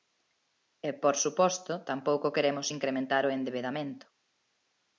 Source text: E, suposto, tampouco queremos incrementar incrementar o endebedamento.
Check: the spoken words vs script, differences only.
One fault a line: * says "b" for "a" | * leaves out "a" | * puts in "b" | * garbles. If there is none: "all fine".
* puts in "por"
* leaves out "incrementar"